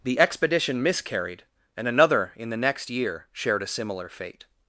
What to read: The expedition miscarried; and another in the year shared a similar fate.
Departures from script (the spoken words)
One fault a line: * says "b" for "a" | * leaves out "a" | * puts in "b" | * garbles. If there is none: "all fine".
* puts in "next"